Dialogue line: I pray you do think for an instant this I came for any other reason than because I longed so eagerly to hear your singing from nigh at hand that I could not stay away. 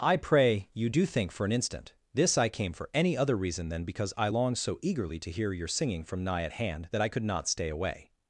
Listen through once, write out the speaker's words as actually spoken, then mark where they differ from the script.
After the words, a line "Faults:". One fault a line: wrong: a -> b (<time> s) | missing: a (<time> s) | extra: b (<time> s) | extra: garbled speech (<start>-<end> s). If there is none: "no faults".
I pray you do think for an instant this I came for any other reason than because I longed so eagerly to hear your singing from nigh at hand that I could not stay away.
Faults:
no faults